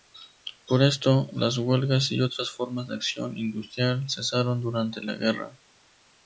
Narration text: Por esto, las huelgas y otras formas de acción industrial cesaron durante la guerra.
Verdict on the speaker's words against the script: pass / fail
pass